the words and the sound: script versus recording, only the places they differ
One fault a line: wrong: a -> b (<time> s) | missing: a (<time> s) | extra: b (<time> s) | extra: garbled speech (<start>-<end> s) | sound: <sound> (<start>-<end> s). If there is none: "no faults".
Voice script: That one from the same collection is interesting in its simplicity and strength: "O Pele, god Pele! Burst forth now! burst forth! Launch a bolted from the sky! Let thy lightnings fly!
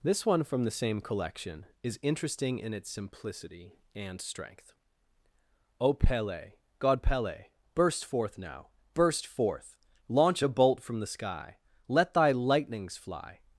wrong: That -> This (0.0 s)
wrong: bolted -> bolt (10.5 s)